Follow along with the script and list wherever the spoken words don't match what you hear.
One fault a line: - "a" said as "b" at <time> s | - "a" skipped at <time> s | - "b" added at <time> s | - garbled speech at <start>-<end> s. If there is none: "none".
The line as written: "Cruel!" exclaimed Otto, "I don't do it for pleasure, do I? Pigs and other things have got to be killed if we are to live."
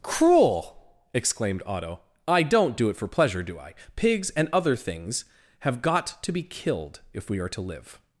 none